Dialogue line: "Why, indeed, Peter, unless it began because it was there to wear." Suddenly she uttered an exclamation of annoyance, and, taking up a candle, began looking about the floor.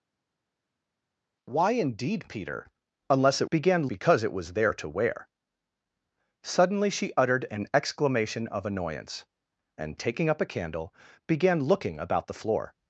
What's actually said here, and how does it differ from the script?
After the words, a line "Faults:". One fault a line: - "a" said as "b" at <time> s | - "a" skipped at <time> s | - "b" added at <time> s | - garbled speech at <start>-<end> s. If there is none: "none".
"Why, indeed, Peter, unless it began because it was there to wear." Suddenly she uttered an exclamation of annoyance, and, taking up a candle, began looking about the floor.
Faults:
none